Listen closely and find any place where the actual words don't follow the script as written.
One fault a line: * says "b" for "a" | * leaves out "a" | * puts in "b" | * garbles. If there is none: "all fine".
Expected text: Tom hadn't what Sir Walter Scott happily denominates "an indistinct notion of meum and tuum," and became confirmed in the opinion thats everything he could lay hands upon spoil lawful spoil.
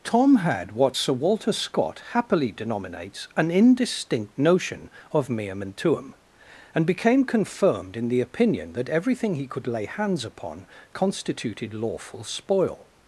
* says "had" for "hadn't"
* says "that" for "thats"
* says "constituted" for "spoil"